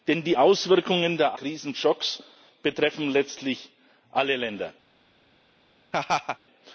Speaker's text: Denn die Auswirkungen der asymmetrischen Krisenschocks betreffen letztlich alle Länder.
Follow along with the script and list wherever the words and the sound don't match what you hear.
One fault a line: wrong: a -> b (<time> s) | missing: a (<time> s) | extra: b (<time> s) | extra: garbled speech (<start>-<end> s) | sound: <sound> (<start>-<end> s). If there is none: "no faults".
missing: asymmetrischen (1.4 s)
sound: laugh (5.9-6.4 s)